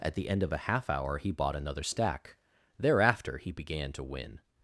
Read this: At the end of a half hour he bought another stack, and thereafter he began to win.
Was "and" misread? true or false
true